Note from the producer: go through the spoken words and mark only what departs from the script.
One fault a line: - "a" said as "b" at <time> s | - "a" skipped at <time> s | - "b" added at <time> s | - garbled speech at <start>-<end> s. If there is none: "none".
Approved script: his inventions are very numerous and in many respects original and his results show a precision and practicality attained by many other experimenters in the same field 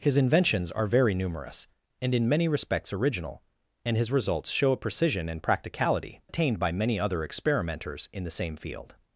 none